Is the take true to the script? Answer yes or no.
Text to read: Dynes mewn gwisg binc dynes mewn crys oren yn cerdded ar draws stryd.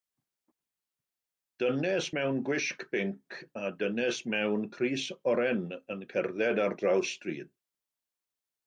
no